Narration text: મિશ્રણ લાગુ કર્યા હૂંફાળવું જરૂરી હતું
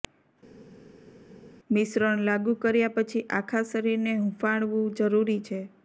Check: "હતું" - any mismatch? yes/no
yes